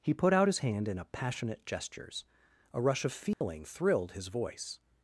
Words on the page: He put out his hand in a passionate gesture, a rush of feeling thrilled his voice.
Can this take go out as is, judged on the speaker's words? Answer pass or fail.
fail